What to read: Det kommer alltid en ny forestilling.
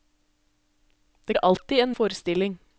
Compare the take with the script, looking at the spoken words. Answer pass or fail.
fail